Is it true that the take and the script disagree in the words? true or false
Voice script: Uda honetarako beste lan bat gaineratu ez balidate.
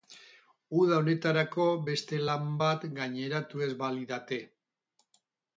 false